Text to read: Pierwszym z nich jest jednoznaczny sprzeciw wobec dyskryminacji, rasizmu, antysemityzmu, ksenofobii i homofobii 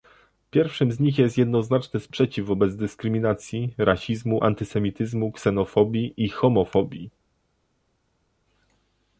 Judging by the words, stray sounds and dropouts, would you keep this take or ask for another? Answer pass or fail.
pass